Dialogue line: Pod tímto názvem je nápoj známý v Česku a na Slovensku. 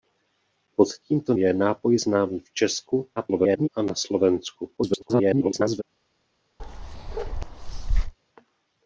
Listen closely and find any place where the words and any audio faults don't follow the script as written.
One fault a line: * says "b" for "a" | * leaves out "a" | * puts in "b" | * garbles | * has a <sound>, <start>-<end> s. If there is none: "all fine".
* leaves out "názvem"
* garbles
* garbles
* has a bark, 6.6-8.1 s